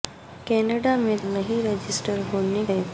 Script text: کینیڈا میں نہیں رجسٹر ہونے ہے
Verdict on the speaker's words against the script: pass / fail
pass